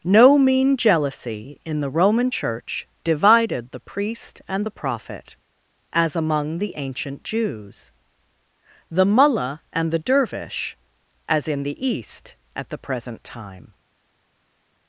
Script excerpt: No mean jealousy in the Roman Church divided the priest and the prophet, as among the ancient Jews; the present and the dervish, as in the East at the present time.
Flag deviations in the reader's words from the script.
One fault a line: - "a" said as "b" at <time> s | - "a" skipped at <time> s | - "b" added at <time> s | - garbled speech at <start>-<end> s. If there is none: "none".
- "present" said as "mullah" at 9.0 s